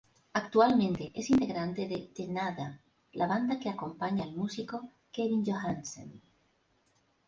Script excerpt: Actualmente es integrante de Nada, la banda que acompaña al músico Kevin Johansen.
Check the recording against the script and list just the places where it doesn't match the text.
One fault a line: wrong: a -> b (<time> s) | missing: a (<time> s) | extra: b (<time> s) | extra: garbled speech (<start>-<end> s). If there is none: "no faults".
extra: The (2.1 s)